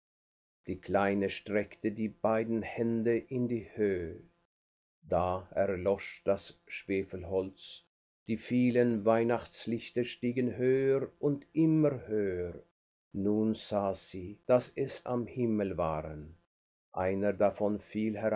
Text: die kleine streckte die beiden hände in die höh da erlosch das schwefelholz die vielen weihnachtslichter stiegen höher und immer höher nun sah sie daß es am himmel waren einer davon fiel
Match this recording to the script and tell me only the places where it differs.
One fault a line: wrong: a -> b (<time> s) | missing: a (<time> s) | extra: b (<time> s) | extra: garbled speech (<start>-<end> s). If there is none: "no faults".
no faults